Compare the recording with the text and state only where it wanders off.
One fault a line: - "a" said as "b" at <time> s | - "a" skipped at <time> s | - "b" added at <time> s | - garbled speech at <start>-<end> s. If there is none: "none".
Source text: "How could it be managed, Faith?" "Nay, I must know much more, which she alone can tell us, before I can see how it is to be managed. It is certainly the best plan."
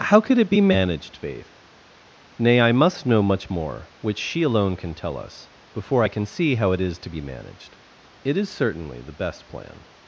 none